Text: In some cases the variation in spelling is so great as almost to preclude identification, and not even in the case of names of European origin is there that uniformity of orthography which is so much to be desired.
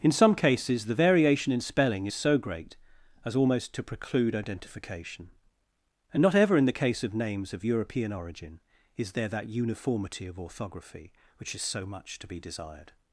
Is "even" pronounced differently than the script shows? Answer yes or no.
yes